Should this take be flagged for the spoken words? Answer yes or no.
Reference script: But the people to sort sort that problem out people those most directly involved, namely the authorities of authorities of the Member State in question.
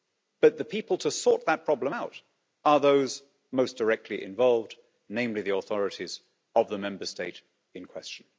yes